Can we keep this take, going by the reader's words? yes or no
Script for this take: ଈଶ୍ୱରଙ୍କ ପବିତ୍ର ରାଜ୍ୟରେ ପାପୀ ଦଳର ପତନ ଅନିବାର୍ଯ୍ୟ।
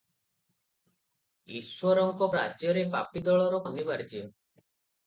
no